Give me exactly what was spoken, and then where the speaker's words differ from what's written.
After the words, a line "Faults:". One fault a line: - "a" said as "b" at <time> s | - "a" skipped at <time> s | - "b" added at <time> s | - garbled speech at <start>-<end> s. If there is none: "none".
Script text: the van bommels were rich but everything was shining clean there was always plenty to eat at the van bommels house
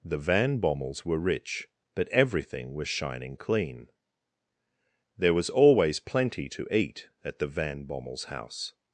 the van bommels were rich but everything was shining clean there was always plenty to eat at the van bommels house
Faults:
none